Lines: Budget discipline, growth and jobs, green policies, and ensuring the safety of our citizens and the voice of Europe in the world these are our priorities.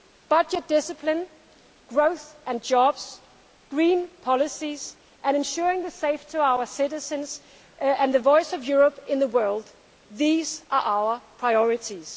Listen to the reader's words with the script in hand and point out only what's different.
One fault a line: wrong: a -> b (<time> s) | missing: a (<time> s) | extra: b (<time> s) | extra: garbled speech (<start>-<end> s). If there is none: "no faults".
no faults